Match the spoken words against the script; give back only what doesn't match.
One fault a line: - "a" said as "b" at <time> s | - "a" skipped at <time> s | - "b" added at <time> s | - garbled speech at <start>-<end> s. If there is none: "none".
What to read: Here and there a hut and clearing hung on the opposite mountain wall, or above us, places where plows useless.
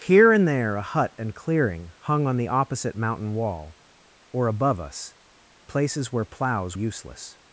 none